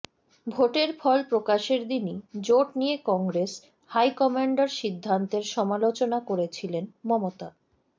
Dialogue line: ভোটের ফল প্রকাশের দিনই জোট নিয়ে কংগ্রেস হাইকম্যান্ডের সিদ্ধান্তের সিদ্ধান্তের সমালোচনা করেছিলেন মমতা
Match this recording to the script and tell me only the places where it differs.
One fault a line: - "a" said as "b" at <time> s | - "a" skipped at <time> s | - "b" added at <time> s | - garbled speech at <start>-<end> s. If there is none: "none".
- "সিদ্ধান্তের" skipped at 5.4 s